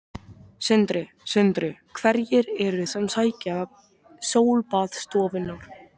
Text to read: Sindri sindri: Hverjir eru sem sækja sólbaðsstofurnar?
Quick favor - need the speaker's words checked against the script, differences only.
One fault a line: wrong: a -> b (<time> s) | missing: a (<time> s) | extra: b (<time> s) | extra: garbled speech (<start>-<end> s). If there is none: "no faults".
no faults